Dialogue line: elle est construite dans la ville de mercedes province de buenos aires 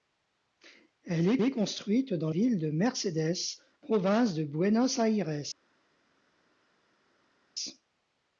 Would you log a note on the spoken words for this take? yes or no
yes